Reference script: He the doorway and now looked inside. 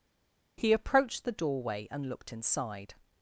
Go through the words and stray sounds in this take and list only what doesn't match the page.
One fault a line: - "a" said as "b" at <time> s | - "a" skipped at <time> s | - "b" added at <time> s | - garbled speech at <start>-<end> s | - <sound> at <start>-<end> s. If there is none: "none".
- "approached" added at 0.7 s
- "now" skipped at 2.1 s